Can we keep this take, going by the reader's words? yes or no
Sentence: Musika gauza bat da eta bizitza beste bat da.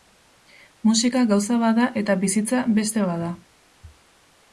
yes